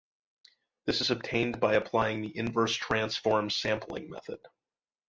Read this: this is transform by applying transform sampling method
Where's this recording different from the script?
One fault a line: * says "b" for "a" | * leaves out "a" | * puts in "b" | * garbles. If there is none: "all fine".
* says "obtained" for "transform"
* puts in "the inverse"